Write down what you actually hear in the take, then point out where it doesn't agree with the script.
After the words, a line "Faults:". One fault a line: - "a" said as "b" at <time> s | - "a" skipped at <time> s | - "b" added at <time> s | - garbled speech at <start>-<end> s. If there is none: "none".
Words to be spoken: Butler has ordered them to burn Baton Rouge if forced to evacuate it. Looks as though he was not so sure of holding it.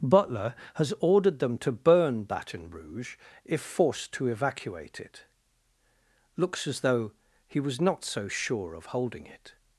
Butler has ordered them to burn Baton Rouge if forced to evacuate it. Looks as though he was not so sure of holding it.
Faults:
none